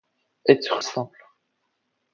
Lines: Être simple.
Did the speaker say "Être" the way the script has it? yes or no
yes